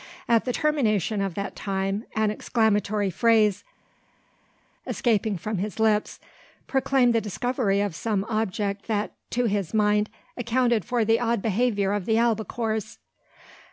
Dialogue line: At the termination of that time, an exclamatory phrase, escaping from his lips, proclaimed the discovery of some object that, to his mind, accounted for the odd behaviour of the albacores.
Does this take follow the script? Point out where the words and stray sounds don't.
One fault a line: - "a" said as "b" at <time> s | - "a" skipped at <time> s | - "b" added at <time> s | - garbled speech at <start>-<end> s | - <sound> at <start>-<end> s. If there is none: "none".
none